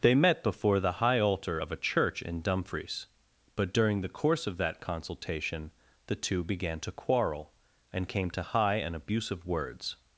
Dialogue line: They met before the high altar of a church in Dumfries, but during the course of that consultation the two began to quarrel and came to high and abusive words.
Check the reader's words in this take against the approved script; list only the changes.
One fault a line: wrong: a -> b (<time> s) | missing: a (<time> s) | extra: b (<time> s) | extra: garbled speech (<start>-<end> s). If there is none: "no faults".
no faults